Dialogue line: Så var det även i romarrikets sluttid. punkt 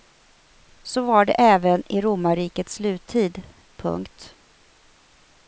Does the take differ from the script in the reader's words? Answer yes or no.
no